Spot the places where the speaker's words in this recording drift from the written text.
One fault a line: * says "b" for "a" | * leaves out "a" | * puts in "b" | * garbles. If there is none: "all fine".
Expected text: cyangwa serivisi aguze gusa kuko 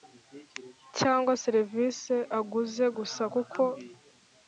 all fine